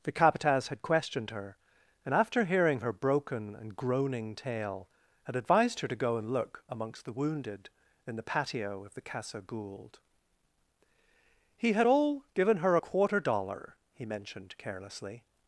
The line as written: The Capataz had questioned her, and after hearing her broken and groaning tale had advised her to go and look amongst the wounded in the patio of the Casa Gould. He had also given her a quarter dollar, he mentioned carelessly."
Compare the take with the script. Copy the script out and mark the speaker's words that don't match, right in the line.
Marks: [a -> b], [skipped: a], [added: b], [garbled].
The Capataz had questioned her, and after hearing her broken and groaning tale had advised her to go and look amongst the wounded in the patio of the Casa Gould. He had [also -> all] given her a quarter dollar, he mentioned carelessly."